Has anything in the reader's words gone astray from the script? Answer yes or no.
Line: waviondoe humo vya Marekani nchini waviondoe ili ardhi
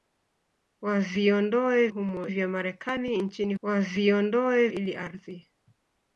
no